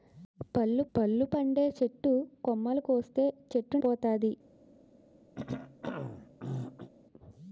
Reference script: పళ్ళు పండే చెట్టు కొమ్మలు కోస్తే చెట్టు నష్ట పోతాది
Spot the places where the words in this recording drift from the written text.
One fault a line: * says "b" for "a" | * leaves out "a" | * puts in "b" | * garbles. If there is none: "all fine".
* puts in "పళ్ళు"
* leaves out "నష్ట"